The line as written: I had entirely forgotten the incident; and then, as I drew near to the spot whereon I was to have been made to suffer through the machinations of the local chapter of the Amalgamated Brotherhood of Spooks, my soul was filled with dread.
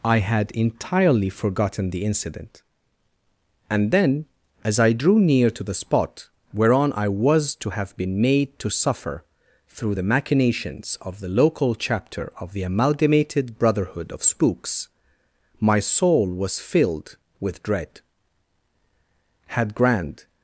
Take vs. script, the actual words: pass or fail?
fail